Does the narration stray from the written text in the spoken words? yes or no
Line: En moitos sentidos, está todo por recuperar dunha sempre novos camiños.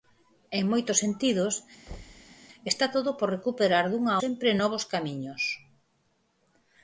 no